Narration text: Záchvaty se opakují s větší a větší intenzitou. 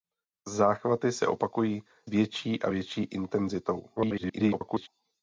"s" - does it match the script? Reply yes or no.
no